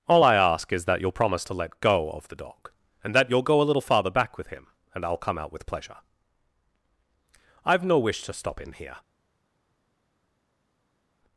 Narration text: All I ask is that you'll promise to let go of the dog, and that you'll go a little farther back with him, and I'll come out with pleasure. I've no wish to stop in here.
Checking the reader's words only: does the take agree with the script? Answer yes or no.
yes